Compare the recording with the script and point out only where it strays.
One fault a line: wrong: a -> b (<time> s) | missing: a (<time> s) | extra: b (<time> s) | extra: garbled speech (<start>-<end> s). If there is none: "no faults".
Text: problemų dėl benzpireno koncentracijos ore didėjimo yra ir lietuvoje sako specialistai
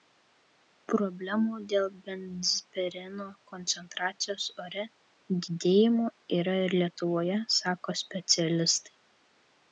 no faults